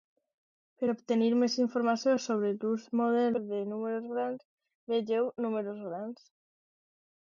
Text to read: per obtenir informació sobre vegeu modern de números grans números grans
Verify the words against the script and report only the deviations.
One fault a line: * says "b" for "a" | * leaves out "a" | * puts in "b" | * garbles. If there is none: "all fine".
* puts in "més"
* says "l'ús" for "vegeu"
* puts in "vegeu"